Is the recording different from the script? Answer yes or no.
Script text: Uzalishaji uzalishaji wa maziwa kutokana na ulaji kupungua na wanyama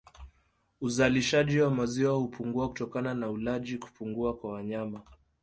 yes